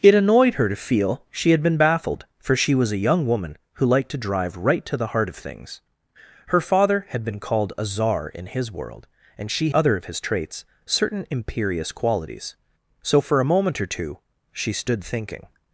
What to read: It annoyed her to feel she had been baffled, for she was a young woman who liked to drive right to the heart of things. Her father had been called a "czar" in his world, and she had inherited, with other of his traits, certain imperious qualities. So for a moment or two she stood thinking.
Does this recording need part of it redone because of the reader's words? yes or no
yes